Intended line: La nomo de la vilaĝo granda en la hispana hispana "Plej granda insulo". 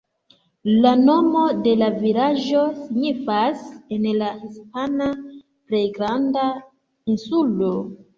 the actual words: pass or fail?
fail